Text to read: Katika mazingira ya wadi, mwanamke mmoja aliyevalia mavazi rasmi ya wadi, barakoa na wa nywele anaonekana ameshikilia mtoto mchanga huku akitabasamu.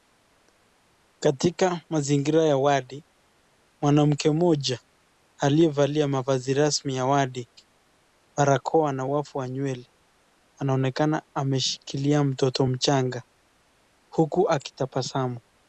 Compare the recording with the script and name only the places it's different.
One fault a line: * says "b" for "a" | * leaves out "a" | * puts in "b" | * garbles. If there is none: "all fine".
* puts in "wavu"